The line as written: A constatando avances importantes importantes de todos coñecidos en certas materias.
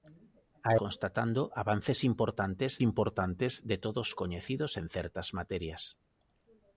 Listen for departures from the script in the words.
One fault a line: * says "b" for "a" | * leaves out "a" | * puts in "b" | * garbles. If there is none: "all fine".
all fine